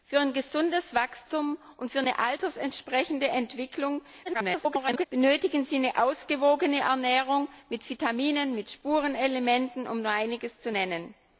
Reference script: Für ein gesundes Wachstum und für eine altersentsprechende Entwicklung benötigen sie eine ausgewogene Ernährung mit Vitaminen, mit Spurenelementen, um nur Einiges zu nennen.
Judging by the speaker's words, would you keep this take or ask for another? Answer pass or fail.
fail